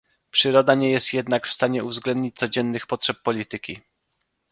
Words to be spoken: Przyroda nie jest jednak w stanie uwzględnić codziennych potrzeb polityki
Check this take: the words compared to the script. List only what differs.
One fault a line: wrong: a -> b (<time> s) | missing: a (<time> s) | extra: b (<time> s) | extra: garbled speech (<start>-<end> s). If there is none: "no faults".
no faults